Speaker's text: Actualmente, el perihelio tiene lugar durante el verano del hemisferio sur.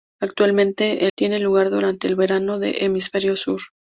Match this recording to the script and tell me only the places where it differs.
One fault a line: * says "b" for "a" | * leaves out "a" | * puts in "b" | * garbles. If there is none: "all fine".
* leaves out "el perihelio"